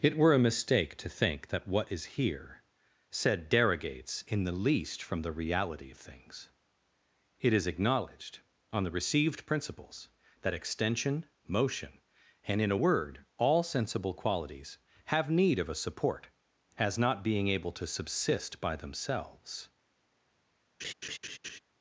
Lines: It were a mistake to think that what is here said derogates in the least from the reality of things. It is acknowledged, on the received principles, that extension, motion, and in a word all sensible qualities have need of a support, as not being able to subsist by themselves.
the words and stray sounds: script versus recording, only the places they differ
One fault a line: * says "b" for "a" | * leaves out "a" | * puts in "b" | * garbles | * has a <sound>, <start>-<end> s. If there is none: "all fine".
* has a laugh, 20.8-21.6 s